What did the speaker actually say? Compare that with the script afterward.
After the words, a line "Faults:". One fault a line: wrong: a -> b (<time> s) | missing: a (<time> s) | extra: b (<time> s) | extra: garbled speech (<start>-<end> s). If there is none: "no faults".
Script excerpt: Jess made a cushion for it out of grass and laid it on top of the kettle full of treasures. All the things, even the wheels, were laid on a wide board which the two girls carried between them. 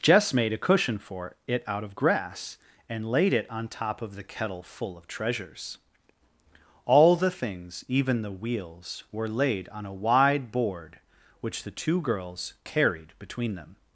Jess made a cushion for it out of grass and laid it on top of the kettle full of treasures. All the things, even the wheels, were laid on a wide board which the two girls carried between them.
Faults:
no faults